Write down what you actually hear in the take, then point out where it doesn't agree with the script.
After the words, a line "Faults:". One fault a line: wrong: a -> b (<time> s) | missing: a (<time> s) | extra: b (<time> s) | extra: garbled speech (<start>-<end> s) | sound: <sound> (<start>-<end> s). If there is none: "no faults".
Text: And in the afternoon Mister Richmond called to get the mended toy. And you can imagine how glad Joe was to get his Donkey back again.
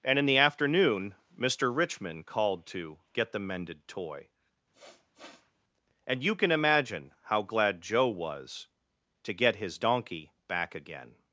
And in the afternoon Mister Richmond called to get the mended toy. And you can imagine how glad Joe was to get his Donkey back again.
Faults:
sound: sniff (4.7-5.5 s)